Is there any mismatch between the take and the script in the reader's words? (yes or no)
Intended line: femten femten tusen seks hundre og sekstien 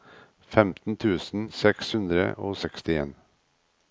yes